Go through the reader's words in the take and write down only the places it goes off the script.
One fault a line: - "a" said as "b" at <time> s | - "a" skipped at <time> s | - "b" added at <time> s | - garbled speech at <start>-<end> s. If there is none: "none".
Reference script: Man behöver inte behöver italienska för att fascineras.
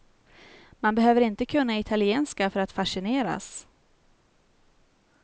- "behöver" said as "kunna" at 1.4 s